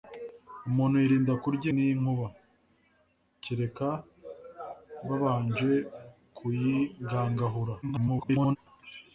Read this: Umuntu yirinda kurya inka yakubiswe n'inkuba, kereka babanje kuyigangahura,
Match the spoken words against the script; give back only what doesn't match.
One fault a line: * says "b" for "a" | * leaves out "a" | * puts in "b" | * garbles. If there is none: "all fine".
* leaves out "inka yakubiswe"
* garbles